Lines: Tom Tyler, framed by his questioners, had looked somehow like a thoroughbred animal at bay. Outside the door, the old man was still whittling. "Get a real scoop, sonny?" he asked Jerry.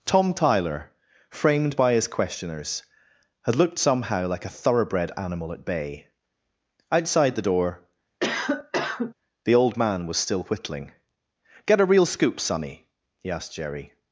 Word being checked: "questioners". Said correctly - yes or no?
yes